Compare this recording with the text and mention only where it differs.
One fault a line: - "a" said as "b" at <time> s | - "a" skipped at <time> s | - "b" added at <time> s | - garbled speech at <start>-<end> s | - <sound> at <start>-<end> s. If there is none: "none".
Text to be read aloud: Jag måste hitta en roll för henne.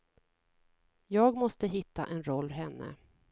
- "för" skipped at 2.5 s